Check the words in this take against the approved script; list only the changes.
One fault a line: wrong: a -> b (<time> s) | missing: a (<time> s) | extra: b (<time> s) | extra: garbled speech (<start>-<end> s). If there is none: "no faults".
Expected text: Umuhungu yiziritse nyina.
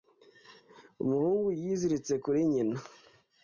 extra: kuri (2.2 s)